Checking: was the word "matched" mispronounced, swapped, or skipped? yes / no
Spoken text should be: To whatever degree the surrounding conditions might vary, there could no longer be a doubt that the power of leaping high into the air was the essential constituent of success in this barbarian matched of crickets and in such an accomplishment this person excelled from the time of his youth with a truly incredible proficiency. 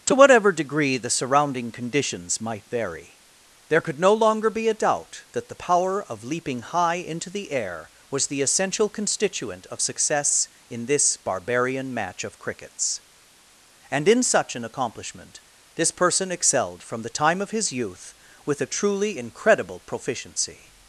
yes